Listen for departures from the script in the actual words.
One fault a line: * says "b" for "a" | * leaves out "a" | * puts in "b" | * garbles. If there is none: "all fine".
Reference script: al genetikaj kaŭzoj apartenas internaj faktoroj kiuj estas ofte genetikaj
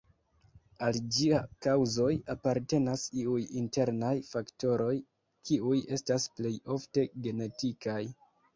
* says "ĝia" for "genetikaj"
* puts in "iuj"
* puts in "plej"